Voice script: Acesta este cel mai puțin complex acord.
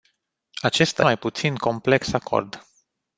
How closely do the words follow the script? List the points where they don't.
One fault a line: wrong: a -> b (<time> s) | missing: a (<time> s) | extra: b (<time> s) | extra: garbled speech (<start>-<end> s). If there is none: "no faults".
missing: este cel (1.1 s)